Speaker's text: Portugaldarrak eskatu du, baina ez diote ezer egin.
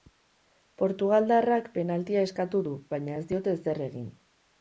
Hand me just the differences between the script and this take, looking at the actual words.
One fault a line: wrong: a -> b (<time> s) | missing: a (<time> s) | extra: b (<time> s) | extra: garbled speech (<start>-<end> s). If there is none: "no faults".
extra: penaltia (1.8 s)